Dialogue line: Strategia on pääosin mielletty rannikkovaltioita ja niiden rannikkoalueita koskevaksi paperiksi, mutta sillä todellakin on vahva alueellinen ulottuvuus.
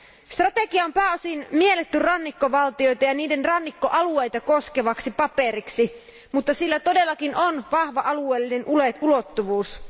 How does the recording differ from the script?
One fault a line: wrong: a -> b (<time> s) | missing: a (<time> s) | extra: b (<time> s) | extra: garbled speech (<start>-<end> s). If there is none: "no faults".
no faults